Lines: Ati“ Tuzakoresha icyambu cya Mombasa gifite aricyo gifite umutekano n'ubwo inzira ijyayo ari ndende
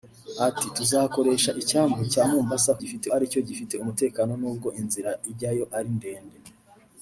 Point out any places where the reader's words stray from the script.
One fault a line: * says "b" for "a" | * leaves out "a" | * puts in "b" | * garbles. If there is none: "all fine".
all fine